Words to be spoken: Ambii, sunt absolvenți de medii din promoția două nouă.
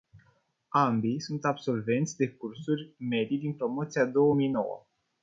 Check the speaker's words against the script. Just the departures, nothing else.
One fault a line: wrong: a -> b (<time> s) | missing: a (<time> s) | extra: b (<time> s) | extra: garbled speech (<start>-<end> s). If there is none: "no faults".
extra: cursuri (2.3 s)
extra: mii (4.3 s)